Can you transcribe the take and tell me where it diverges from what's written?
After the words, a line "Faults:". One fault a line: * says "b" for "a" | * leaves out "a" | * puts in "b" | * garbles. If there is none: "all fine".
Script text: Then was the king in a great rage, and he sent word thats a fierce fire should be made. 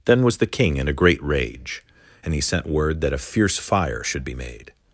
Then was the king in a great rage, and he sent word that a fierce fire should be made.
Faults:
* says "that" for "thats"